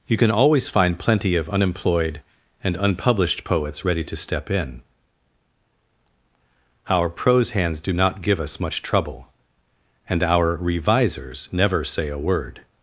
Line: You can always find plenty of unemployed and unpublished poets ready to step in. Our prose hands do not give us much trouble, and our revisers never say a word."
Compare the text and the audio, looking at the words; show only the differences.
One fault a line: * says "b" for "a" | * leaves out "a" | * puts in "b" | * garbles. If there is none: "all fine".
all fine